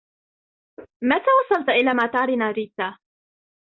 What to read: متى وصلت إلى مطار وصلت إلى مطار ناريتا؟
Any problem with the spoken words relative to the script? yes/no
yes